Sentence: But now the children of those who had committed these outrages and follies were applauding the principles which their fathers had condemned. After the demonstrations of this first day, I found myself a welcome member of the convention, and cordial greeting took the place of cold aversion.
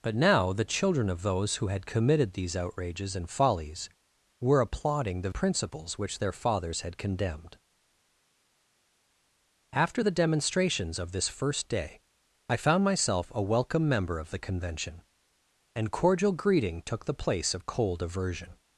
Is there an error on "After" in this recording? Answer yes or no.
no